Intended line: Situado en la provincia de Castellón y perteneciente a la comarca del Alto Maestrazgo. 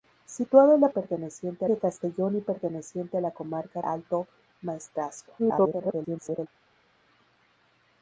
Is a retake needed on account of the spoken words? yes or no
yes